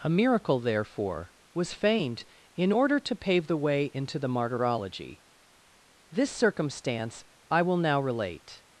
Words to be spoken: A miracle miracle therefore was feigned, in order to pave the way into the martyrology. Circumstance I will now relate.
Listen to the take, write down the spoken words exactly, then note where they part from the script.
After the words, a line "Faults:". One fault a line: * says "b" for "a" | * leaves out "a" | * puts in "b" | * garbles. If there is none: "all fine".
A miracle therefore was feigned, in order to pave the way into the martyrology. This circumstance I will now relate.
Faults:
* leaves out "miracle"
* puts in "This"